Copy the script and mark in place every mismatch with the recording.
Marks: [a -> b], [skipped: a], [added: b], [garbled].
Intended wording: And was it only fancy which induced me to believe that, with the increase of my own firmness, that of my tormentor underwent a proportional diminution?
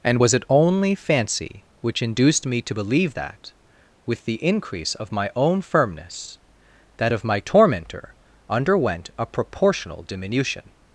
And was it only fancy which induced me to believe that, with the increase of my own firmness, that of my tormentor underwent a proportional diminution?